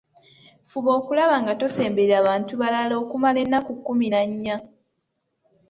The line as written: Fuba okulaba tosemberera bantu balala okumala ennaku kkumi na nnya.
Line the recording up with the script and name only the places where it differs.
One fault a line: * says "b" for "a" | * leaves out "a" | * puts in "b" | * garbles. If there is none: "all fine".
* puts in "nga"